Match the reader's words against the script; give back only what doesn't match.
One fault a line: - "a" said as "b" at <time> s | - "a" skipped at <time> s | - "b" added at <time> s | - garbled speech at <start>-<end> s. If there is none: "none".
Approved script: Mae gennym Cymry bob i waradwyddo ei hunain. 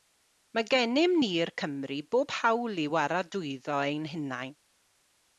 - "ni'r" added at 1.2 s
- "hawl" added at 2.4 s
- "ei" said as "ein" at 3.9 s